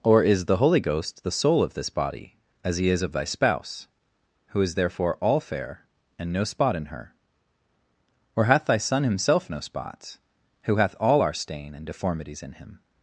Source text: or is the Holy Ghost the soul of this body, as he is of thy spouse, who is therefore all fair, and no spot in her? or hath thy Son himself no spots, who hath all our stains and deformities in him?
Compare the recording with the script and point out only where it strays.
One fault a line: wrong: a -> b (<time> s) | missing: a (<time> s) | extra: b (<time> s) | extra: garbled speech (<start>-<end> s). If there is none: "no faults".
wrong: stains -> stain (11.3 s)